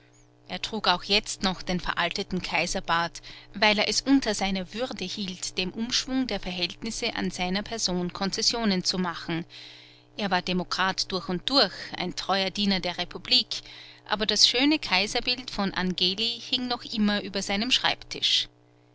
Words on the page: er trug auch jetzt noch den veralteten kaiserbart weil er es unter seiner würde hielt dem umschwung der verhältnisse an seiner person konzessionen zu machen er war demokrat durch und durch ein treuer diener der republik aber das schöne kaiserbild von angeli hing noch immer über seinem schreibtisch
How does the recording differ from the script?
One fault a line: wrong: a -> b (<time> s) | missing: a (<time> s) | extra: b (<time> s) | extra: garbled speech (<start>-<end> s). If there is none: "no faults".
no faults